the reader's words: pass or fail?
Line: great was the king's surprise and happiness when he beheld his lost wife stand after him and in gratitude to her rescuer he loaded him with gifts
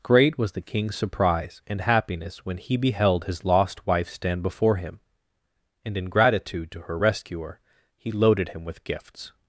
fail